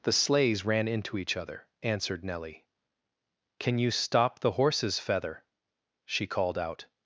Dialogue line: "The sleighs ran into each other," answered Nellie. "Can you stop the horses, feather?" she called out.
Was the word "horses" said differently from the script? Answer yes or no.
no